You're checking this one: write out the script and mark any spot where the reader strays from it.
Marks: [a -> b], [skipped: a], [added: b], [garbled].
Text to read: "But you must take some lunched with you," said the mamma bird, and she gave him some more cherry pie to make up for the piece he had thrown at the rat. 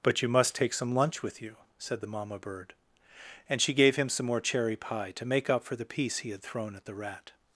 "But you must take some [lunched -> lunch] with you," said the mamma bird, and she gave him some more cherry pie to make up for the piece he had thrown at the rat.